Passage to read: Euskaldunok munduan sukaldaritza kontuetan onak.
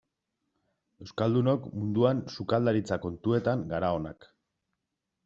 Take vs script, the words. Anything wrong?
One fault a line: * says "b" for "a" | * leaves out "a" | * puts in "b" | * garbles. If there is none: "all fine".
* puts in "gara"